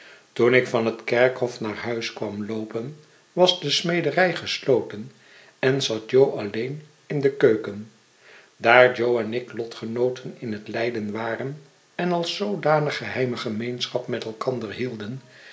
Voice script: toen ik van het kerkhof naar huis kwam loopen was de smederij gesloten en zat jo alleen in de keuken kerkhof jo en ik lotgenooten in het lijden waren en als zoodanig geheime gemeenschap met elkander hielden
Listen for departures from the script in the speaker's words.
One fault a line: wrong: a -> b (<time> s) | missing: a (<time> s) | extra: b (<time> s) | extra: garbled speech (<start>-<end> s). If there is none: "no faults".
wrong: kerkhof -> daar (8.6 s)